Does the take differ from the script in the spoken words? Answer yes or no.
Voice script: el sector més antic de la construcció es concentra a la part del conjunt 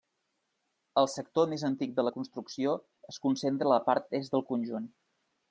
yes